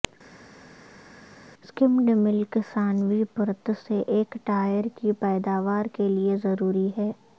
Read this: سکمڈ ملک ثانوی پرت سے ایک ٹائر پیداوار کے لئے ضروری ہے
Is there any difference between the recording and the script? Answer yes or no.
yes